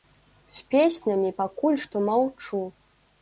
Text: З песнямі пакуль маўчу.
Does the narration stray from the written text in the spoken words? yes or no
yes